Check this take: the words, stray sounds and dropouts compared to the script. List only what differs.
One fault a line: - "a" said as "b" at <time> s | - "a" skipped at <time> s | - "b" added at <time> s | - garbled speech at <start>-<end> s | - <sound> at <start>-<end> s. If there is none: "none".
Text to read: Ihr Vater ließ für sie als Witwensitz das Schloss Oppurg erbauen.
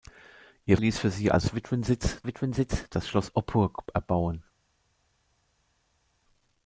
- "Vater" skipped at 0.8 s
- "Witwensitz" added at 2.3 s